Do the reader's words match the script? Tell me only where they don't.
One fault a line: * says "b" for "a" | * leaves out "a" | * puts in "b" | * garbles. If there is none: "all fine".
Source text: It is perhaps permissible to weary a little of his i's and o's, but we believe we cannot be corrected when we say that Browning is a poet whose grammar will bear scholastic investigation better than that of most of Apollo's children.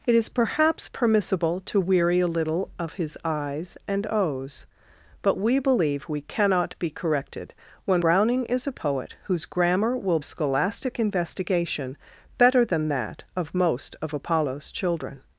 * leaves out "we say that"
* leaves out "bear"